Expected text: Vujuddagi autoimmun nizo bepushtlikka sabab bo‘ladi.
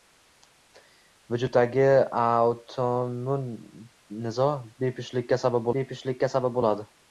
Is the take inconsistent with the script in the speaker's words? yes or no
yes